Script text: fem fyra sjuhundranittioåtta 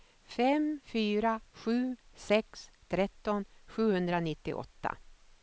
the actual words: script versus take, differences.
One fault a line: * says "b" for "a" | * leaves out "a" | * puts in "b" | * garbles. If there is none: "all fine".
* puts in "sju sex tretton"